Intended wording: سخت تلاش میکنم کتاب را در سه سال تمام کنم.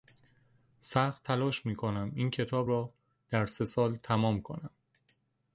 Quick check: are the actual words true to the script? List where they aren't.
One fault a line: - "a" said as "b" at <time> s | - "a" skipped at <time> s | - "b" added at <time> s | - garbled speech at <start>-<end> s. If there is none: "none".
- "این" added at 2.1 s